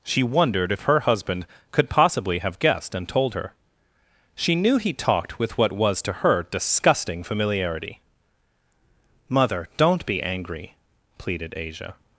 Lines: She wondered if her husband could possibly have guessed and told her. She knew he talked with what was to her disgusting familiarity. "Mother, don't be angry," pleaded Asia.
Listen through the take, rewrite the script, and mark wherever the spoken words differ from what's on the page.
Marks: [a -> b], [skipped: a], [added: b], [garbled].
She wondered if her husband could possibly have guessed and told her. She knew he talked with what was to her disgusting familiarity. "Mother, don't be angry," pleaded Asia.